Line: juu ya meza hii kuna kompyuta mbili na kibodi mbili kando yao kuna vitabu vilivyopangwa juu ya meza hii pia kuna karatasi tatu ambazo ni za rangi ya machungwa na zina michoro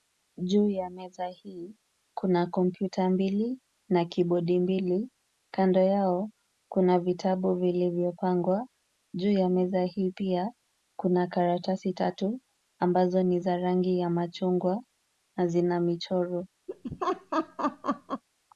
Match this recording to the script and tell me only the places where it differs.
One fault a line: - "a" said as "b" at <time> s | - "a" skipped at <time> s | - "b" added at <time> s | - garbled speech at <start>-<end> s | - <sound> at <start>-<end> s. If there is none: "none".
- laugh at 16.7-18.2 s